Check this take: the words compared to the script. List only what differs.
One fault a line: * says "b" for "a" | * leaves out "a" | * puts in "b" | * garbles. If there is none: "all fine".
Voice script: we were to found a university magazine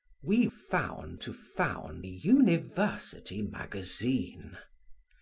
* says "found" for "were"
* leaves out "a"